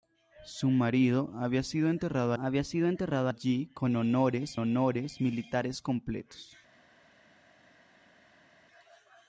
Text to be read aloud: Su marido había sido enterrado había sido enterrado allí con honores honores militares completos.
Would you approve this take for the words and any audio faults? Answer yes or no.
yes